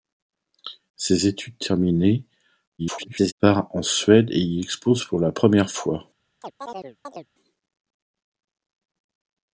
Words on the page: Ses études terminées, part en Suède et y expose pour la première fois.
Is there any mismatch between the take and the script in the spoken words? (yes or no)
yes